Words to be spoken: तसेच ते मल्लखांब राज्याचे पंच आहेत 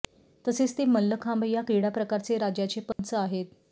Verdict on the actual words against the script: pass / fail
fail